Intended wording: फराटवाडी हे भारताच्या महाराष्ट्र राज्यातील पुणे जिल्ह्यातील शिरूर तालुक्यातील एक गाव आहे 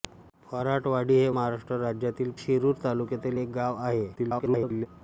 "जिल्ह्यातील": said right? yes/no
no